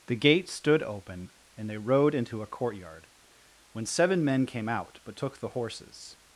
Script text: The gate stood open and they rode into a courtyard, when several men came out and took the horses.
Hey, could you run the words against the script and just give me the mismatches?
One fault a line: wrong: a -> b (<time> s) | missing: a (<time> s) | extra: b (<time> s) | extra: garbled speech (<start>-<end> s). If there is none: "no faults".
wrong: several -> seven (3.9 s)
wrong: and -> but (5.0 s)